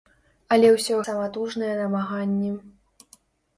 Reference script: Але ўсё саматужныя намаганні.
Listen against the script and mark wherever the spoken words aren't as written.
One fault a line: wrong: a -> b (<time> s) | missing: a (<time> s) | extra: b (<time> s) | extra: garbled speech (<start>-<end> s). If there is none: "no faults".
no faults